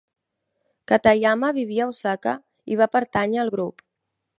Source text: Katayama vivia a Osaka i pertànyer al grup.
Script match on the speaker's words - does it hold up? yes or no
no